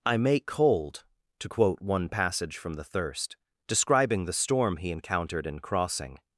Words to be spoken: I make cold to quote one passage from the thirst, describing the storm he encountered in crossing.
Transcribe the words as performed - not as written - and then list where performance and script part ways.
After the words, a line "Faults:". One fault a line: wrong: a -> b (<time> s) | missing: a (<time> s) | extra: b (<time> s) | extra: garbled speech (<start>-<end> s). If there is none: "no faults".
I make cold to quote one passage from the thirst, describing the storm he encountered in crossing.
Faults:
no faults